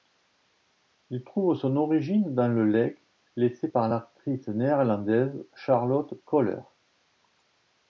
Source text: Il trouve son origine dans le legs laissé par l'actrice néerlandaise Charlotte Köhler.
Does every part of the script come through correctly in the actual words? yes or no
yes